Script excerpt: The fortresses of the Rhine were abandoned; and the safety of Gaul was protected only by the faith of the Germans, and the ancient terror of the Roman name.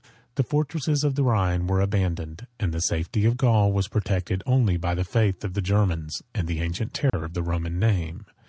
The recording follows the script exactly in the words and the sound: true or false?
false